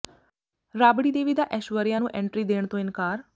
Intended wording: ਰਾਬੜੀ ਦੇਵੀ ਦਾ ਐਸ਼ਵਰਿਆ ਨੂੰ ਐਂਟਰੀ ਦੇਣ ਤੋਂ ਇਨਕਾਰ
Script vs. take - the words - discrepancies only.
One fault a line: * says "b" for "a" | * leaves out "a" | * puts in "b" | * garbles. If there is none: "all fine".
all fine